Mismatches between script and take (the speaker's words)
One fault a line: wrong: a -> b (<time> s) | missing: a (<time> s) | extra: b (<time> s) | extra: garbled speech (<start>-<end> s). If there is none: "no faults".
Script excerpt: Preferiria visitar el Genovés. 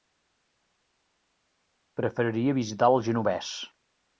no faults